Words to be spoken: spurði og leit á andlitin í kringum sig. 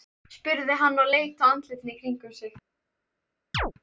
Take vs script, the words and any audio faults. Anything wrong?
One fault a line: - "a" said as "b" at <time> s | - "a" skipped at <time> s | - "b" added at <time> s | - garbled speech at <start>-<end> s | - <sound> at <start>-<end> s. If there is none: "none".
- "hann" added at 0.8 s
- chirp at 3.5-3.7 s